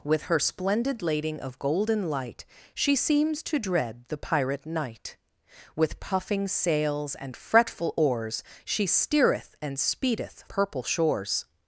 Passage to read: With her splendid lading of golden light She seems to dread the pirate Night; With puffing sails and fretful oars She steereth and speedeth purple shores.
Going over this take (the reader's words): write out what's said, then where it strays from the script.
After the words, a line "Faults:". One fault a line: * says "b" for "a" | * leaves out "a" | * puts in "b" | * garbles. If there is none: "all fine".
With her splendid lading of golden light She seems to dread the pirate Night; With puffing sails and fretful oars She steereth and speedeth purple shores.
Faults:
all fine